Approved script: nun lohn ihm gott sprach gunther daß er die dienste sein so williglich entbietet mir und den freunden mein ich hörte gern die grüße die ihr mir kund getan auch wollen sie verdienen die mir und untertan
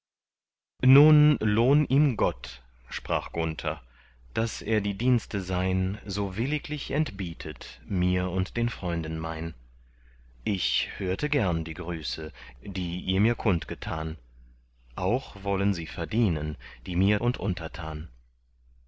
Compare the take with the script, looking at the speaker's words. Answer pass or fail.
pass